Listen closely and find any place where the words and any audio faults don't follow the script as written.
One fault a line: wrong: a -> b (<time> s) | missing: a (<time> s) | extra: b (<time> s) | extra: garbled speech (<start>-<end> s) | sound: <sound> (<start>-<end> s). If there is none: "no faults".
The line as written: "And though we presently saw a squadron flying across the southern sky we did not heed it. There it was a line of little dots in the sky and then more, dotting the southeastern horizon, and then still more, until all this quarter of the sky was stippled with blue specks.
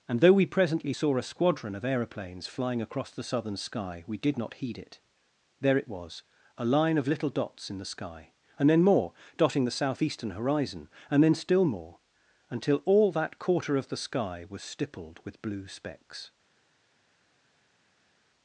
extra: of aeroplanes (1.7 s)
wrong: this -> that (13.1 s)